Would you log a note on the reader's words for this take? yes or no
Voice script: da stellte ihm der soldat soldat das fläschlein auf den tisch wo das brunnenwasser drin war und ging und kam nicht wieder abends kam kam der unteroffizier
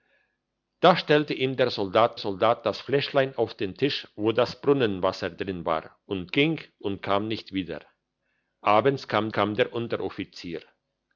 no